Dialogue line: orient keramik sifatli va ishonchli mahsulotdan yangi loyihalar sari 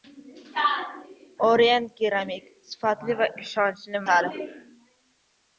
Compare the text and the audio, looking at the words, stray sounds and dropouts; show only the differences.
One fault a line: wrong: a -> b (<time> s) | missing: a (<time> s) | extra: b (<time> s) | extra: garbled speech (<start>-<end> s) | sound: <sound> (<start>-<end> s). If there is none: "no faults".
missing: mahsulotdan yangi loyihalar (4.1 s)